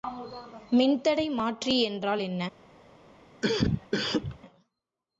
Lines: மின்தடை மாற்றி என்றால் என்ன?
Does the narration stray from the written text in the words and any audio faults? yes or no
yes